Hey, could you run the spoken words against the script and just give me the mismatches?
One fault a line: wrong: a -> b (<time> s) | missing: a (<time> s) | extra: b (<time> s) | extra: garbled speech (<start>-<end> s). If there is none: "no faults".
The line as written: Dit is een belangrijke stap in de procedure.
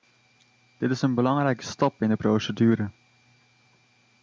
no faults